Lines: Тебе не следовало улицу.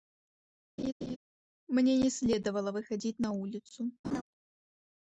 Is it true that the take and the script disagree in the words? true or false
true